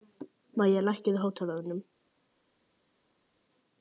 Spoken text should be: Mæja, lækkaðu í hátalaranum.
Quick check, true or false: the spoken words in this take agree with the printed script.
true